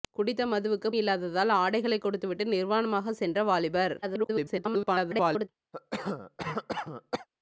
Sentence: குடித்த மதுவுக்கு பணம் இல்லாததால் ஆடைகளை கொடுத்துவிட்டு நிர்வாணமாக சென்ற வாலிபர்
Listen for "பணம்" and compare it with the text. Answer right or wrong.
wrong